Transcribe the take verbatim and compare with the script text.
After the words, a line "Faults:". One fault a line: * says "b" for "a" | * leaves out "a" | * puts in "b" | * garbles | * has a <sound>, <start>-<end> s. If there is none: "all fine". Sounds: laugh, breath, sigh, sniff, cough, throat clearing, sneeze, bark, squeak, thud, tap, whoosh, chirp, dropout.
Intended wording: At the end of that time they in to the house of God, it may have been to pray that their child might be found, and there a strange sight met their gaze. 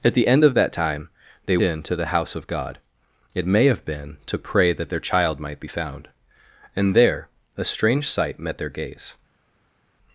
At the end of that time they in to the house of God, it may have been to pray that their child might be found, and there a strange sight met their gaze.
Faults:
all fine